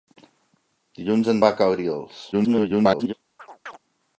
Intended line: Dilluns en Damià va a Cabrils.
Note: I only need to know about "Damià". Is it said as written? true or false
false